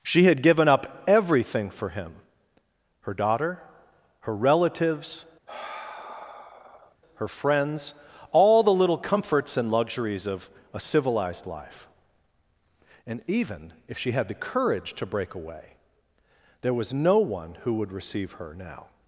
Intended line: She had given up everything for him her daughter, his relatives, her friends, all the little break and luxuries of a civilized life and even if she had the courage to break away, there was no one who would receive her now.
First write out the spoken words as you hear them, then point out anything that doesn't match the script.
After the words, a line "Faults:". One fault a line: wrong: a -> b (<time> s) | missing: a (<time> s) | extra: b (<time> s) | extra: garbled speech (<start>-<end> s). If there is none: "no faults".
She had given up everything for him her daughter, her relatives, her friends, all the little comforts and luxuries of a civilized life and even if she had the courage to break away, there was no one who would receive her now.
Faults:
wrong: his -> her (4.2 s)
wrong: break -> comforts (9.0 s)